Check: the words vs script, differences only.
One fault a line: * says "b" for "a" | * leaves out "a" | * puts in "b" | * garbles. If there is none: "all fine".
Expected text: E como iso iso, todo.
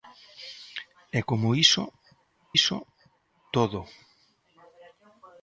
all fine